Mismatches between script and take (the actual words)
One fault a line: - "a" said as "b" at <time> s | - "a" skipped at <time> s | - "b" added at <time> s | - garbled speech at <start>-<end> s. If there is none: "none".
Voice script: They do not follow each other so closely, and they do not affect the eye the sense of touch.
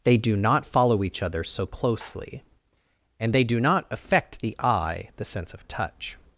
none